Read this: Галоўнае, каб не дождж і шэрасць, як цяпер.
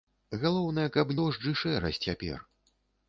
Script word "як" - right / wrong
wrong